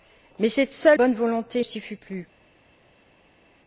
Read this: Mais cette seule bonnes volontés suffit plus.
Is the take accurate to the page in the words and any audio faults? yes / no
yes